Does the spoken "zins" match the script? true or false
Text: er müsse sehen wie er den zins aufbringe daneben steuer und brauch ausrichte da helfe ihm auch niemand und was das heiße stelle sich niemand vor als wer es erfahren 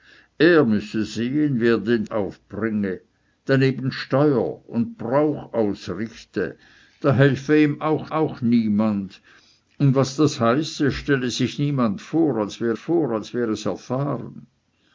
false